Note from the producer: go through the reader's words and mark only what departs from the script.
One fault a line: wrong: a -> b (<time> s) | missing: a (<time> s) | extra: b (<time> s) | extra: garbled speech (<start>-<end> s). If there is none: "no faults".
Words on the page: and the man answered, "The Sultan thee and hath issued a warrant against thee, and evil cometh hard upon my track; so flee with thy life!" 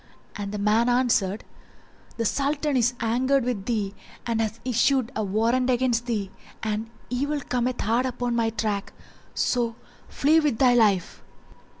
extra: is angered with (2.8 s)